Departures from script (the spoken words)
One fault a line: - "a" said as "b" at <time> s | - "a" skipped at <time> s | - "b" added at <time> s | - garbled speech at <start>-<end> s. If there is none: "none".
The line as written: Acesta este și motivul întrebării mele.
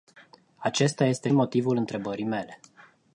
- "și" skipped at 1.3 s